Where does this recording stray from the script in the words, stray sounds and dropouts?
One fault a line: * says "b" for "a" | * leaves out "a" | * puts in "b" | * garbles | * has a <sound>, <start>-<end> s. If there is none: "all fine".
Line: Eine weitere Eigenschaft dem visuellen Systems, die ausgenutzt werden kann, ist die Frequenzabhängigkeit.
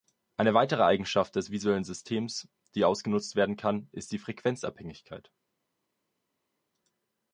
* says "des" for "dem"